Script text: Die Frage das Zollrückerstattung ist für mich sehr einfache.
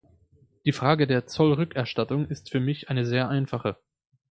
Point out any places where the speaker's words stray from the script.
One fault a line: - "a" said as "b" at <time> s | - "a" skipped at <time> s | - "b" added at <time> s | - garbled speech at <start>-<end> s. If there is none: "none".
- "das" said as "der" at 1.1 s
- "eine" added at 2.9 s